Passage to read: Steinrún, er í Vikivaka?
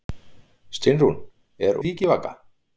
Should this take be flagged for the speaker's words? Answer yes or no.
no